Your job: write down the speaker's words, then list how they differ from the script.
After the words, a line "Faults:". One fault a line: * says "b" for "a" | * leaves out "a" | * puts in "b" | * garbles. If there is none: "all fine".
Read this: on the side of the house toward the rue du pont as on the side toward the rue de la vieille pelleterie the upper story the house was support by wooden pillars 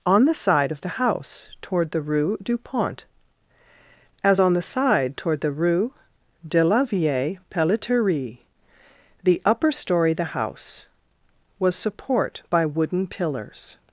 on the side of the house toward the rue du pont as on the side toward the rue de la vieille pelleterie the upper story the house was support by wooden pillars
Faults:
all fine